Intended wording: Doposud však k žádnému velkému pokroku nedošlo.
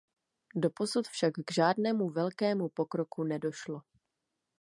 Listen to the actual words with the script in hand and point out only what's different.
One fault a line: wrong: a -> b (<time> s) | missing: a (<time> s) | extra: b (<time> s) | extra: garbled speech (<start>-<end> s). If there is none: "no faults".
no faults